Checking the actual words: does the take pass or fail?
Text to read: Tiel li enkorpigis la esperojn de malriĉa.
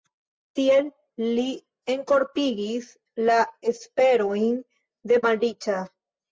pass